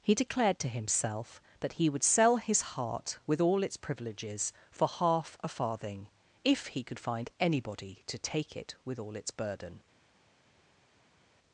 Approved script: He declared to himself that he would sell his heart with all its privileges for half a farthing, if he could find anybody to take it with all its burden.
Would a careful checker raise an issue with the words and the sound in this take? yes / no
no